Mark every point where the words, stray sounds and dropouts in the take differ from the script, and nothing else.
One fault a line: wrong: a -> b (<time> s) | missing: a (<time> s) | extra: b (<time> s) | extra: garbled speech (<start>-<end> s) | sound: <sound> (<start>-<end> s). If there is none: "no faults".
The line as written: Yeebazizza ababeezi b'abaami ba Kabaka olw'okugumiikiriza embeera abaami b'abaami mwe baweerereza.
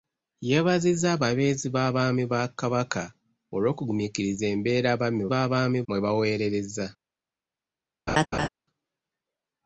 sound: laugh (8.1-8.5 s)